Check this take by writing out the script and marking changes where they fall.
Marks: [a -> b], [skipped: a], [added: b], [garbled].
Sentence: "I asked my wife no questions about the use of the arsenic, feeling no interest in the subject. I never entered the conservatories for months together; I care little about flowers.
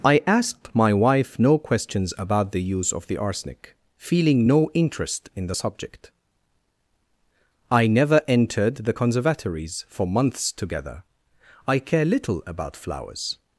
"I asked my wife no questions about the use of the arsenic, feeling no interest in the subject. I never entered the conservatories for months together; I care little about flowers.